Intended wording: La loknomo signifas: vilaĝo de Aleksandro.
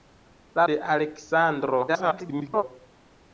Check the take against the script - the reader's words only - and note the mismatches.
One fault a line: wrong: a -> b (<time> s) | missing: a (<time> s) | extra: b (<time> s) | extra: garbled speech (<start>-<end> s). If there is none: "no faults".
missing: loknomo signifas vilaĝo (0.6 s)
extra: garbled speech (1.9-2.6 s)